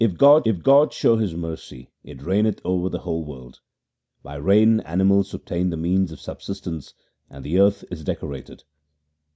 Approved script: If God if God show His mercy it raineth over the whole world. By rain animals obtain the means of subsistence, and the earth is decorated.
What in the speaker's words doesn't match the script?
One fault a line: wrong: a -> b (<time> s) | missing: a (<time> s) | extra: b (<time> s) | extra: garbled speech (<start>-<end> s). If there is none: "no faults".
no faults